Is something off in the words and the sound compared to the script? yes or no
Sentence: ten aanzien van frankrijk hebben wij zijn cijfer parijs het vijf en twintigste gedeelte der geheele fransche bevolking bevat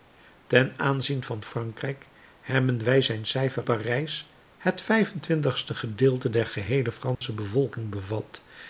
yes